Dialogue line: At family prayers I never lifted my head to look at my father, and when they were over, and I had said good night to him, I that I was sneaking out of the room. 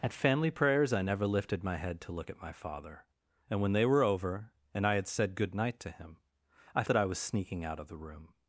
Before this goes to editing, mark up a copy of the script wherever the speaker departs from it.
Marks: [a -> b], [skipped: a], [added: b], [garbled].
At family prayers I never lifted my head to look at my father, and when they were over, and I had said good night to him, I that I was sneaking out of the room.